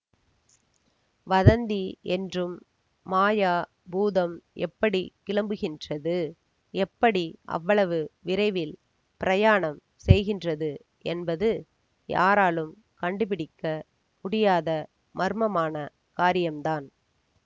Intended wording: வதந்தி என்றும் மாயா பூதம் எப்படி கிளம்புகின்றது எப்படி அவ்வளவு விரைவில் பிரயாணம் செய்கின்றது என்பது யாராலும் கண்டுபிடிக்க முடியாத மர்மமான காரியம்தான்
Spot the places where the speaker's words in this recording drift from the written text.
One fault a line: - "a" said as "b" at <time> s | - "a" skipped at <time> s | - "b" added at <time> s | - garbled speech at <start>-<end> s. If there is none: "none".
none